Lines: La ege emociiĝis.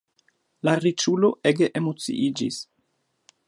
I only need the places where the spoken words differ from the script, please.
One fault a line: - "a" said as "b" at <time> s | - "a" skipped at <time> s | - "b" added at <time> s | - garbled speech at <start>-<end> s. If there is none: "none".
- "riĉulo" added at 0.8 s